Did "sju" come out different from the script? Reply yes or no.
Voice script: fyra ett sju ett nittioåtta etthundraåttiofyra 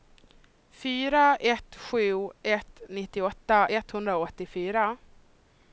no